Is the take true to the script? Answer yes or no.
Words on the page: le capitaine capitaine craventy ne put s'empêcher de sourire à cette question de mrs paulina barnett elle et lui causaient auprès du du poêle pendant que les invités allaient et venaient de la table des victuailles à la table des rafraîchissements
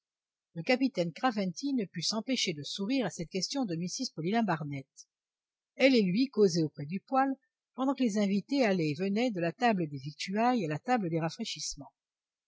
no